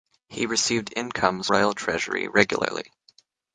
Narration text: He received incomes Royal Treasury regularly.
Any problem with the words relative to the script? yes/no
no